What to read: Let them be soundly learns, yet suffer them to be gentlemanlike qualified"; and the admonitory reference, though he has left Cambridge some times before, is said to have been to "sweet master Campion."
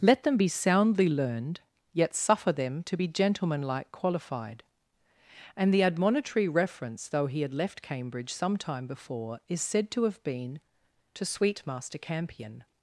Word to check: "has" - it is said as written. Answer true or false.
false